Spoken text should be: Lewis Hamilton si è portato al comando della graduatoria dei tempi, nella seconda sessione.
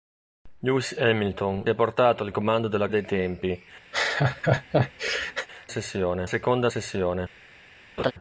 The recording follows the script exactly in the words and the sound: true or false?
false